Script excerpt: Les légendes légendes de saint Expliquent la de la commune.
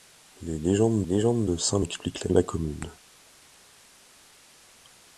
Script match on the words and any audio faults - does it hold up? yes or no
yes